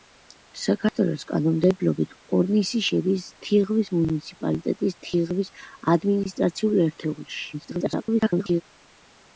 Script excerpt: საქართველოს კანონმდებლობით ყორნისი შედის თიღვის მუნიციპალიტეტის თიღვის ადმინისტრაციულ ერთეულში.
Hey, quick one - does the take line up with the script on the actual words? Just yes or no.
no